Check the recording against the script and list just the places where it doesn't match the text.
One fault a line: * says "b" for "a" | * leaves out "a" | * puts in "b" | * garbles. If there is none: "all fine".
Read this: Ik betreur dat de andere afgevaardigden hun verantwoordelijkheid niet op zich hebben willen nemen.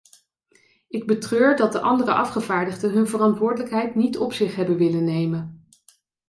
all fine